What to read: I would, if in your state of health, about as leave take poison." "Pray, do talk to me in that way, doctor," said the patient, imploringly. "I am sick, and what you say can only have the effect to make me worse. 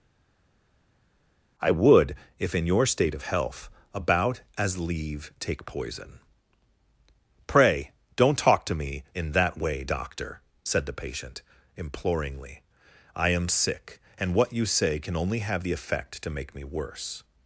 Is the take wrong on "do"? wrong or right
wrong